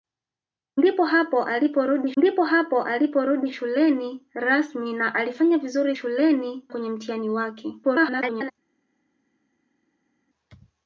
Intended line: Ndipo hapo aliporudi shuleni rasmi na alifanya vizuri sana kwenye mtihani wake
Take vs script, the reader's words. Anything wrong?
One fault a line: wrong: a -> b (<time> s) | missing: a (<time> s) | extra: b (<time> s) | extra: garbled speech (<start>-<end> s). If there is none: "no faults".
extra: ndipo hapo aliporudi (2.2 s)
wrong: sana -> shuleni (5.9 s)
extra: garbled speech (7.8-8.5 s)